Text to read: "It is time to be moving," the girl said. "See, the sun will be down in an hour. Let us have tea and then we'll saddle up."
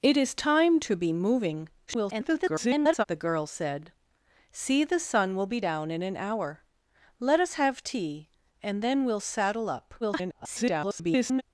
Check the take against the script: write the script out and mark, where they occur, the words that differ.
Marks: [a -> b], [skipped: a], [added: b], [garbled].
"It is time to be moving," [garbled] the girl said. "See, the sun will be down in an hour. Let us have tea and then we'll saddle up." [garbled]